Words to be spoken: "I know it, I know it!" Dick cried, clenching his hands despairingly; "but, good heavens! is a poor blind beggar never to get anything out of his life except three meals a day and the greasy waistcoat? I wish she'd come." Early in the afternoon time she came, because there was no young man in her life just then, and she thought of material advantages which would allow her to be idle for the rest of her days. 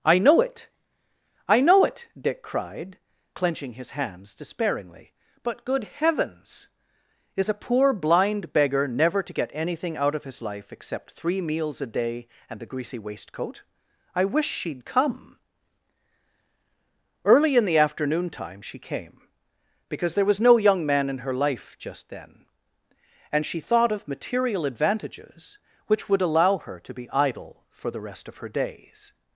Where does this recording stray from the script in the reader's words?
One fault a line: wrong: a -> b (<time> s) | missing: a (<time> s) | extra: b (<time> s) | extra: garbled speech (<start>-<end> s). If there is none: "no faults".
no faults